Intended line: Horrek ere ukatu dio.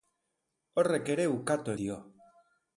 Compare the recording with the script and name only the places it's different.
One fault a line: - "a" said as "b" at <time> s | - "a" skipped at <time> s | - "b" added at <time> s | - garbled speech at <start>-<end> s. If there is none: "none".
none